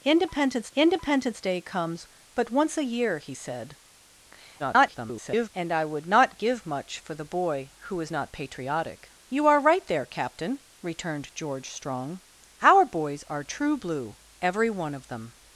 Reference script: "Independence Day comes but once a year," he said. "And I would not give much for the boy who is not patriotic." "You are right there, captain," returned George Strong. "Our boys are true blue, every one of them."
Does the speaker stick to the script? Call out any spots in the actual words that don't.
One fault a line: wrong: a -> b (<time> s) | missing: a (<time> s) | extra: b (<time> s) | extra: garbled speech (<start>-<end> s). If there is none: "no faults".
extra: independence (0.7 s)
extra: garbled speech (4.6-5.5 s)